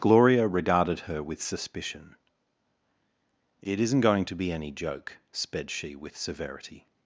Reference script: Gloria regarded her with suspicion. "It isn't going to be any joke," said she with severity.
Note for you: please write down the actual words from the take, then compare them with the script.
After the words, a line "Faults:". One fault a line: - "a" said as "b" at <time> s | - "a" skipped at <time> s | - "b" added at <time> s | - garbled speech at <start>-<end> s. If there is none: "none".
Gloria regarded her with suspicion. "It isn't going to be any joke," sped she with severity.
Faults:
- "said" said as "sped" at 5.3 s